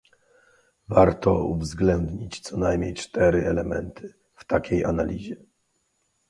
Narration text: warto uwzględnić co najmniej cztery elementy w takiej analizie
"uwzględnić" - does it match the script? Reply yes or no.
yes